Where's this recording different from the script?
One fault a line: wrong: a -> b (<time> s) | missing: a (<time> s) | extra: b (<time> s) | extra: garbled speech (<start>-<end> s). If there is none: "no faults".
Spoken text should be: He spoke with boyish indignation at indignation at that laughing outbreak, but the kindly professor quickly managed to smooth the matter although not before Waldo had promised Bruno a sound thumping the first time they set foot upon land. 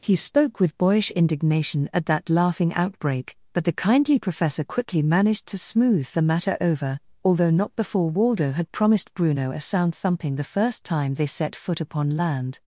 missing: indignation at (2.1 s)
extra: over (6.6 s)